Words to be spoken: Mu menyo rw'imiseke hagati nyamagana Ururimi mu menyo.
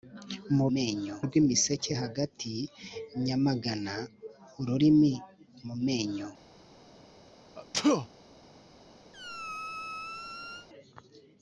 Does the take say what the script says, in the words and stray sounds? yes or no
no